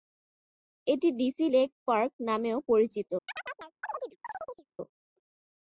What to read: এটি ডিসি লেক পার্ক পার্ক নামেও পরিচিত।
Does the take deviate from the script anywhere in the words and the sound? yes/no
yes